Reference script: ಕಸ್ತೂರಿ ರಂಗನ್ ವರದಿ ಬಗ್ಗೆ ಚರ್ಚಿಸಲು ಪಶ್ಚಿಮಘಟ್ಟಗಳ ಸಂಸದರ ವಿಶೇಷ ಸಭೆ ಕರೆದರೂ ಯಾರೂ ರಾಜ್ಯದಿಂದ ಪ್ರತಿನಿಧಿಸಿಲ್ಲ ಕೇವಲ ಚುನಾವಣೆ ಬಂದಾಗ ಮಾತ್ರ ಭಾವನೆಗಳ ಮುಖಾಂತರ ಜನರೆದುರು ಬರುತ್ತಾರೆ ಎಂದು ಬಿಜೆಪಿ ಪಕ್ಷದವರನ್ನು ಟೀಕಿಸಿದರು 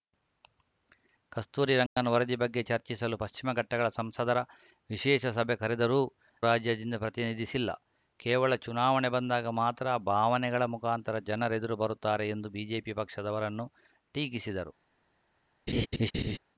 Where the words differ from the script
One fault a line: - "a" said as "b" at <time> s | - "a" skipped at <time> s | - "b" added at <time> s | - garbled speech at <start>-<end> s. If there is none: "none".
- "ಯಾರೂ" skipped at 6.0 s